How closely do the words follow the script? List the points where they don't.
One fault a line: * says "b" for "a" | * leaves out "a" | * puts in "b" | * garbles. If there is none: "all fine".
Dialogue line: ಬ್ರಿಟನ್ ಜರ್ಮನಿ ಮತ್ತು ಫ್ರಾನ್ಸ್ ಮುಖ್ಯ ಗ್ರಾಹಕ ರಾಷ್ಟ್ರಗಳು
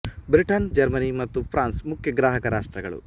all fine